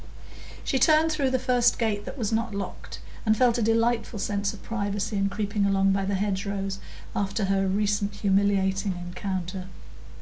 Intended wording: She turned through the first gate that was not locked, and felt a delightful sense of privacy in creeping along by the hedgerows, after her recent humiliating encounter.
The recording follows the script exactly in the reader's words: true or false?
true